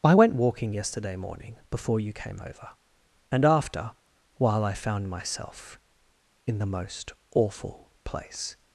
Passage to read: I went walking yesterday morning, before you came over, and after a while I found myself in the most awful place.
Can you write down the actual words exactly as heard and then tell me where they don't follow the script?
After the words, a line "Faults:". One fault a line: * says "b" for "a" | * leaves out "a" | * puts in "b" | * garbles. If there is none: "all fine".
I went walking yesterday morning, before you came over, and after while I found myself in the most awful place.
Faults:
* leaves out "a"